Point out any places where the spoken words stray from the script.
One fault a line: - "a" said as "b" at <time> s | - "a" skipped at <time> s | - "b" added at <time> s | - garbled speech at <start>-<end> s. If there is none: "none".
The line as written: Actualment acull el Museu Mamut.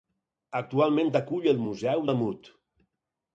none